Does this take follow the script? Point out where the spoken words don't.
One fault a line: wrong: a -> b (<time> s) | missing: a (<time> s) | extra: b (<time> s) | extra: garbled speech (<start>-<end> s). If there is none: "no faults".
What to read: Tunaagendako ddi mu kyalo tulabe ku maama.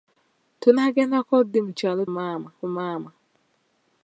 wrong: tulabe -> maama (2.1 s)